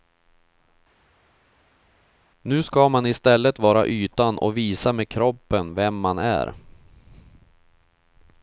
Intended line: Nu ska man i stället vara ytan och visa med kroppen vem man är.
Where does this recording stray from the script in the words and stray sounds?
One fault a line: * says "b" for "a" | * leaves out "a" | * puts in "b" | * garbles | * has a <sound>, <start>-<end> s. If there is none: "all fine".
all fine